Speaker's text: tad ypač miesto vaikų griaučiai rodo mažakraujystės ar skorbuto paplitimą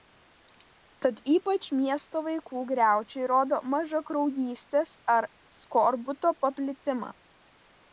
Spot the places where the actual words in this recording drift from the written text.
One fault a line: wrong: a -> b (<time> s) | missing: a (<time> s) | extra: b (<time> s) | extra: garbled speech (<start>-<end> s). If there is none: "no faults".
no faults